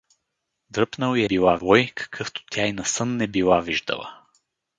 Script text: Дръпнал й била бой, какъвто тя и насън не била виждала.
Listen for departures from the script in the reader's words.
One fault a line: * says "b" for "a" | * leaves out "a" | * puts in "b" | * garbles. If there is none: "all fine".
all fine